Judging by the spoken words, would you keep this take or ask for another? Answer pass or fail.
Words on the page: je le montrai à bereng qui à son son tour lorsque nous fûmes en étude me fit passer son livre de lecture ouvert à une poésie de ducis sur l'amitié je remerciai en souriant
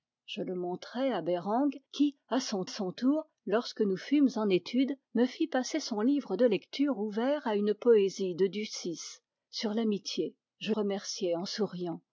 pass